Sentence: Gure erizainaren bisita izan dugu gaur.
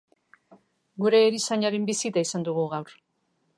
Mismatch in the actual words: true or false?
false